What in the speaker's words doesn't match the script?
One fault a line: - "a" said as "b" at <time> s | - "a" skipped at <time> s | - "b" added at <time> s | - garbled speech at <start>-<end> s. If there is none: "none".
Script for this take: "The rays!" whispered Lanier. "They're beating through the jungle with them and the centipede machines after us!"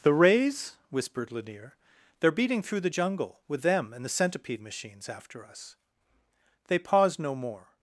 - "They paused no more" added at 6.7 s